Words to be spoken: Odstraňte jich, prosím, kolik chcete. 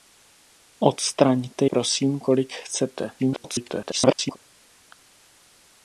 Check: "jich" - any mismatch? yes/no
yes